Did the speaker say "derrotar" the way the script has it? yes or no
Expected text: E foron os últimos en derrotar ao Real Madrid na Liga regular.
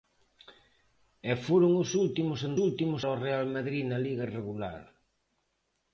no